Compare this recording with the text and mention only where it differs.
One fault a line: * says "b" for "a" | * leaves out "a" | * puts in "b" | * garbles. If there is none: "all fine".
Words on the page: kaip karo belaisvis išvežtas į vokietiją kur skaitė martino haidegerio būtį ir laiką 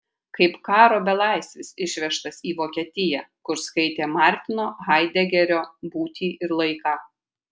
all fine